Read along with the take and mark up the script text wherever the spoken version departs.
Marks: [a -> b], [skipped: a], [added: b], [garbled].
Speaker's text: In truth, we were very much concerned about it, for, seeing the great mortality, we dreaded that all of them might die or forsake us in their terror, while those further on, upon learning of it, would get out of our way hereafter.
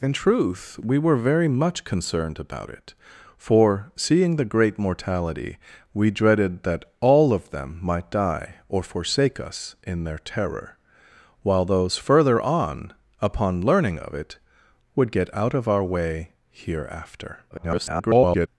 In truth, we were very much concerned about it, for, seeing the great mortality, we dreaded that all of them might die or forsake us in their terror, while those further on, upon learning of it, would get out of our way hereafter. [garbled]